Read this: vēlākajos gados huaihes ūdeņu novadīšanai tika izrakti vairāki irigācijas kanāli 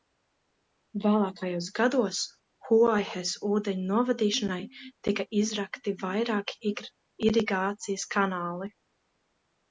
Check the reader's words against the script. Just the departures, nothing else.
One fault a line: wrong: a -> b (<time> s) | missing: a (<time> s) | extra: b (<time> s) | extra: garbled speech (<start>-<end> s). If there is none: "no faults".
no faults